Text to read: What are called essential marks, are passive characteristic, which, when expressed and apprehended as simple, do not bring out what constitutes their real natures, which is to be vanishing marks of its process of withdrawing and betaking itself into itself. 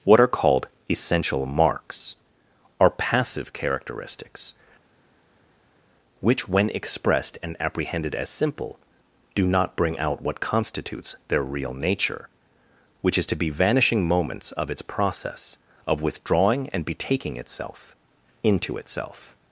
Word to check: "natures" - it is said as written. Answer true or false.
false